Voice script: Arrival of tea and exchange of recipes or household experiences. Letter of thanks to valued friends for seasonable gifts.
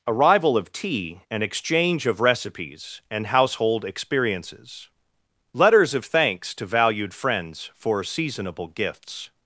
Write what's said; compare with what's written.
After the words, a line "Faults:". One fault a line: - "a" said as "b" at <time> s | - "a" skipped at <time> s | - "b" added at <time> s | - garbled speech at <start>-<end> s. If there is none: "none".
Arrival of tea and exchange of recipes and household experiences. Letters of thanks to valued friends for seasonable gifts.
Faults:
- "or" said as "and" at 3.1 s
- "Letter" said as "Letters" at 5.5 s